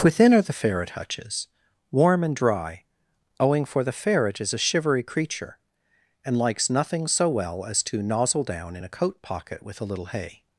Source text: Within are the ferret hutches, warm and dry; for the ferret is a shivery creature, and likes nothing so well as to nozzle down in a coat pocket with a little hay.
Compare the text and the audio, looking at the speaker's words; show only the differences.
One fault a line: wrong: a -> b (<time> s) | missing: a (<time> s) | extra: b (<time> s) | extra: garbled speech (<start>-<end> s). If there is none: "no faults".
extra: owing (3.4 s)